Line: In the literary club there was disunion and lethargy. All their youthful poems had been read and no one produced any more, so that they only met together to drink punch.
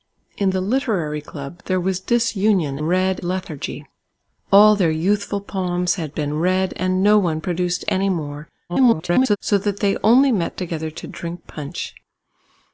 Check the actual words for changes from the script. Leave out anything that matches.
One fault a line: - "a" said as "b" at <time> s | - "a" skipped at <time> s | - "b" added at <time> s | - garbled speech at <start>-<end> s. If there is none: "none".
- "and" said as "read" at 2.8 s
- garbled speech at 8.7-9.4 s